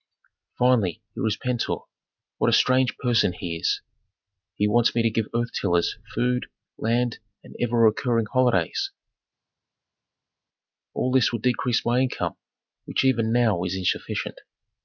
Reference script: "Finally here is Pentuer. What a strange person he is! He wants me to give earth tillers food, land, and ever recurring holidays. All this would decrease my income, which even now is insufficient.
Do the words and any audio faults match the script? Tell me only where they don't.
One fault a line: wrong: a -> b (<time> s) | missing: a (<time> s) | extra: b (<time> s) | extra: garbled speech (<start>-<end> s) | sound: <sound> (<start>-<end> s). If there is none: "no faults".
no faults